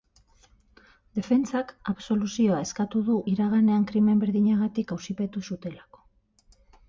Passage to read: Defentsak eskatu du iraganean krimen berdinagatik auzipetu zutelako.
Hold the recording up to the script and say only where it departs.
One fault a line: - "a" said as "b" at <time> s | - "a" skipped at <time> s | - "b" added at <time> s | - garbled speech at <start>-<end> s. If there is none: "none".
- "absoluzioa" added at 1.9 s